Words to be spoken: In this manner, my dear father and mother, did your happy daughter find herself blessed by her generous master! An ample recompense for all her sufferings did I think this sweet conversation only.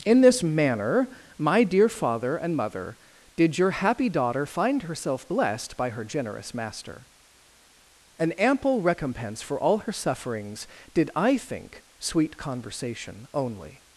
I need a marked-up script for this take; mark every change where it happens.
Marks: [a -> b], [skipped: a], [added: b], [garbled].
In this manner, my dear father and mother, did your happy daughter find herself blessed by her generous master! An ample recompense for all her sufferings did I think [skipped: this] sweet conversation only.